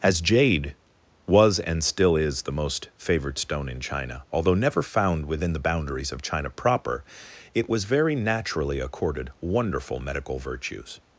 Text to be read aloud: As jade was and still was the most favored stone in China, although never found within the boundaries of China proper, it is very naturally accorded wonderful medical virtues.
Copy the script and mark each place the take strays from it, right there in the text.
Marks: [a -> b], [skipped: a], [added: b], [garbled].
As jade was and still [was -> is] the most favored stone in China, although never found within the boundaries of China proper, it [is -> was] very naturally accorded wonderful medical virtues.